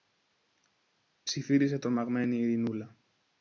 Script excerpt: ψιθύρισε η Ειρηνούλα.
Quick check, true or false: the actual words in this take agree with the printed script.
false